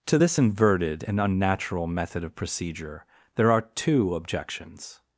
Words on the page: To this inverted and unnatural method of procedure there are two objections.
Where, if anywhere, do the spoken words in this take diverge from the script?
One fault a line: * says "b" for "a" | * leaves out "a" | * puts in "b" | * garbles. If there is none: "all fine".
all fine